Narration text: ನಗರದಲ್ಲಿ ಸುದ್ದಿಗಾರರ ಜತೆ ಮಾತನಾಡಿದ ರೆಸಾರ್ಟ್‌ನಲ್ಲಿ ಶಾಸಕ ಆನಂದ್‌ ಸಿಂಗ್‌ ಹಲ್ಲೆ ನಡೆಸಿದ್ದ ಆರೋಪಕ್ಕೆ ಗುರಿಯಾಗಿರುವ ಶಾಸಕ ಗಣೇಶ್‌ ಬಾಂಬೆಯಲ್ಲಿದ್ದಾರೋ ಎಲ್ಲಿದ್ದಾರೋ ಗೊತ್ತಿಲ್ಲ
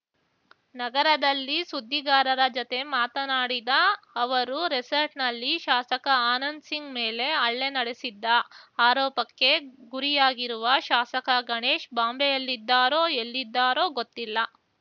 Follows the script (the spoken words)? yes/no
no